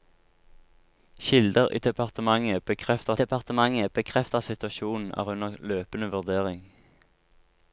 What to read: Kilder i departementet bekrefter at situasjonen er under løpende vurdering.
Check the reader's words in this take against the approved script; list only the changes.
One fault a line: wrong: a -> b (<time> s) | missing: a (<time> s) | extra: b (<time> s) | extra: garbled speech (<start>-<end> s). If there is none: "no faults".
extra: departementet bekrefter (3.2 s)